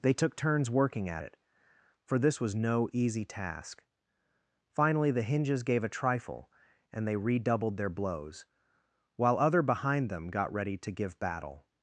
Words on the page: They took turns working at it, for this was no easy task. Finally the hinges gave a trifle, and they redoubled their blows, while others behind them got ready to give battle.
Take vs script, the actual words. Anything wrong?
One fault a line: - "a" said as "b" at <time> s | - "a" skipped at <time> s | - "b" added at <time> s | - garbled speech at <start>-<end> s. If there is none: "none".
- "others" said as "other" at 9.4 s